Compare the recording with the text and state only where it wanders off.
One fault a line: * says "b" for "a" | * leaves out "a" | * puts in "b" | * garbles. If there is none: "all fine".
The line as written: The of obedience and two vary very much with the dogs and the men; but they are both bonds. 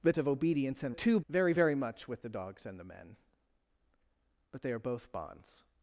all fine